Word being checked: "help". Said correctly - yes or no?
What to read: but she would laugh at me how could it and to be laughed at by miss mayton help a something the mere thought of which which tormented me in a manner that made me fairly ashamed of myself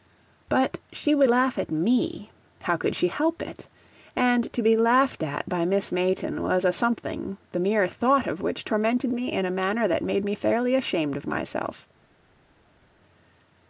no